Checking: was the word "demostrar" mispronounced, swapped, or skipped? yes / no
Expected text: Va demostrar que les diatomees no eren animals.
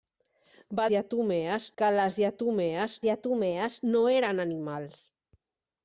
yes